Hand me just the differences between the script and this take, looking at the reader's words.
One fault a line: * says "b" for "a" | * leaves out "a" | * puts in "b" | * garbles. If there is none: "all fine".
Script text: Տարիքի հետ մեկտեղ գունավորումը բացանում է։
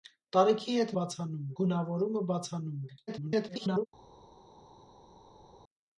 * says "բացանում" for "մեկտեղ"
* garbles